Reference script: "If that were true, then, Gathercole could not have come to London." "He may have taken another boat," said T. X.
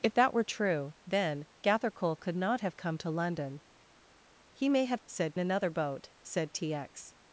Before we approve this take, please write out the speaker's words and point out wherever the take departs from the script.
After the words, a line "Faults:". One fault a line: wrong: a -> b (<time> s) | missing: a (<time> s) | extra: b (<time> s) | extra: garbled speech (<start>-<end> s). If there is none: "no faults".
"If that were true, then, Gathercole could not have come to London." "He may have said another boat," said T. X.
Faults:
wrong: taken -> said (5.1 s)